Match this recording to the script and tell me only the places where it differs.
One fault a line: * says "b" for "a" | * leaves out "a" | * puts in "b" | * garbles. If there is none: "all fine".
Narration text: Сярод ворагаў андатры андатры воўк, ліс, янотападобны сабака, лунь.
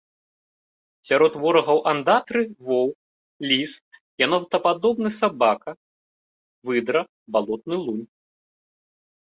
* leaves out "андатры"
* puts in "выдра балотны"